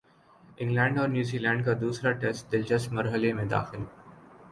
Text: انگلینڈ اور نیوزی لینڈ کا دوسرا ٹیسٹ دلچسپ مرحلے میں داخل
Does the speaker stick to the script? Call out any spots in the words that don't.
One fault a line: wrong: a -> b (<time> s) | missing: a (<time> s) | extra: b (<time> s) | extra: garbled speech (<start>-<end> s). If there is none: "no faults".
no faults